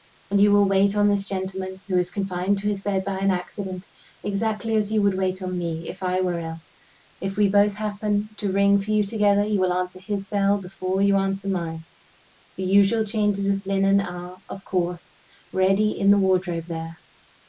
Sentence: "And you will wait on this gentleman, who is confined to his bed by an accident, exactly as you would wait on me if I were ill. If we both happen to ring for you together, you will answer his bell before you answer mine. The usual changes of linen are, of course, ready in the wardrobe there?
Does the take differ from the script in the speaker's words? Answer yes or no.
no